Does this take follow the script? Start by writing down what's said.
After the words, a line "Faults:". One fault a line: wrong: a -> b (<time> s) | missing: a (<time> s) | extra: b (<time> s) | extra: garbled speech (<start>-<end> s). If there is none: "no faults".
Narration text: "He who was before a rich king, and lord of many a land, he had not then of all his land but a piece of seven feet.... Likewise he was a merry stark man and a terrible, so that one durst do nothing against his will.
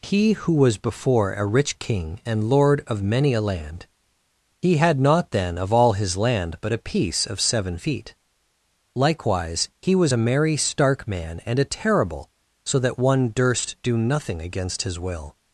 "He who was before a rich king, and lord of many a land, he had not then of all his land but a piece of seven feet.... Likewise he was a merry stark man and a terrible, so that one durst do nothing against his will.
Faults:
no faults